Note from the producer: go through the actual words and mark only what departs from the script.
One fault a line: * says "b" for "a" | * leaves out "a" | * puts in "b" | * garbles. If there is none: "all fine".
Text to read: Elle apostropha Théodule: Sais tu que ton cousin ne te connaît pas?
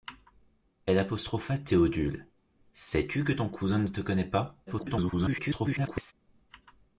* garbles